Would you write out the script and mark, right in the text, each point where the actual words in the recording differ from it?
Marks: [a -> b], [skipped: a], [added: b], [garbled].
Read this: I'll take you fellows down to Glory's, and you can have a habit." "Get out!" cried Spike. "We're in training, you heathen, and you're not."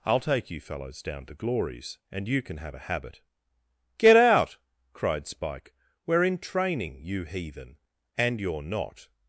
I'll take you fellows down to Glory's, and you can have a habit." "Get out!" cried Spike. "We're in training, you heathen, and you're not."